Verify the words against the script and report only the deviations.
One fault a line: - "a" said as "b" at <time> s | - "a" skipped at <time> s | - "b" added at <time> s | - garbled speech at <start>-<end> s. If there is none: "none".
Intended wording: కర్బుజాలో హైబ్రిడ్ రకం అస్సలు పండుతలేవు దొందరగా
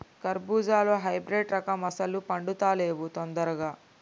none